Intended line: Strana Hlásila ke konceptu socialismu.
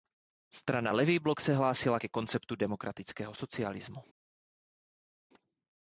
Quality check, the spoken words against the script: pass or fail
fail